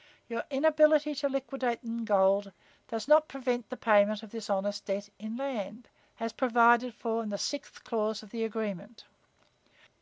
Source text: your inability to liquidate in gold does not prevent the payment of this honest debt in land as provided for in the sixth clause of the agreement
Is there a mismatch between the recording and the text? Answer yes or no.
no